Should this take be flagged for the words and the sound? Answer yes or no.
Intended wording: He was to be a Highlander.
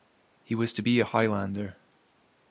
no